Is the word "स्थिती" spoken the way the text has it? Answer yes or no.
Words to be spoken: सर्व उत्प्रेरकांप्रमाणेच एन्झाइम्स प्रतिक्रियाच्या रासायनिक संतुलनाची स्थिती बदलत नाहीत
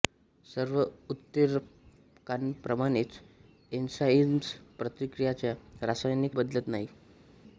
no